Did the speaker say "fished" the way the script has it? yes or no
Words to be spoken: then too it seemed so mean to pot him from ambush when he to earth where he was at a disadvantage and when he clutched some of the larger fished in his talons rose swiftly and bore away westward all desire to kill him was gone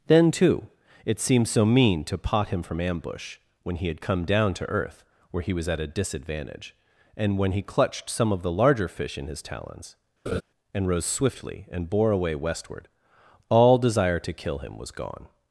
no